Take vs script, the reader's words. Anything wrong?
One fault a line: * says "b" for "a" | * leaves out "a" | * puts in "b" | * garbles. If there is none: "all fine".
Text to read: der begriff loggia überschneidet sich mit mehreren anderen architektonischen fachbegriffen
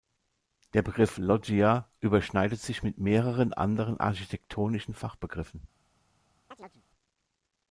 all fine